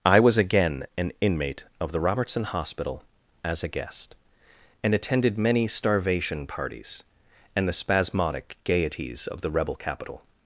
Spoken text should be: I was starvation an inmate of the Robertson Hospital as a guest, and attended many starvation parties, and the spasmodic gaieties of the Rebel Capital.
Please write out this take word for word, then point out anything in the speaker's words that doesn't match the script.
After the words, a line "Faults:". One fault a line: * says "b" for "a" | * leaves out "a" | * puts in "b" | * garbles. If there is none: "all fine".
I was again an inmate of the Robertson Hospital as a guest, and attended many starvation parties, and the spasmodic gaieties of the Rebel Capital.
Faults:
* says "again" for "starvation"